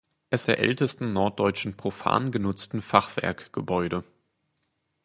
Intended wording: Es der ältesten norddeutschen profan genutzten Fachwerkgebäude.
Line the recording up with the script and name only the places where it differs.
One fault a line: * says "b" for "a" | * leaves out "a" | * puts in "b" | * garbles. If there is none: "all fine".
all fine